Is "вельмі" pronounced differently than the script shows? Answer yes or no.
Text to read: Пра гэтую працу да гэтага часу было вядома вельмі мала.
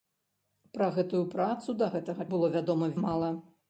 yes